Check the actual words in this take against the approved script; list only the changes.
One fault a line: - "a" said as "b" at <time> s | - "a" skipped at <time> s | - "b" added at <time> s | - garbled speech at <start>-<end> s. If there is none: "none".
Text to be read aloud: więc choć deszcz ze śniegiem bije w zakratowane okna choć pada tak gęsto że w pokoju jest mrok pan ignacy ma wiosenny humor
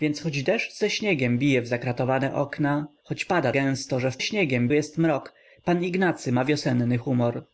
- "tak" skipped at 3.5 s
- "pokoju" said as "śniegiem" at 4.2 s